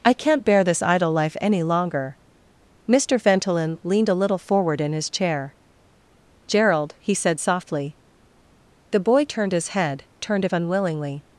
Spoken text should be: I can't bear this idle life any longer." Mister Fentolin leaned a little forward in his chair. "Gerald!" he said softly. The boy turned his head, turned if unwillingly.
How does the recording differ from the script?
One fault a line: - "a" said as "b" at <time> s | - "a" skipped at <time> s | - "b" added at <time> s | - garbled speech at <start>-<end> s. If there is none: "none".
none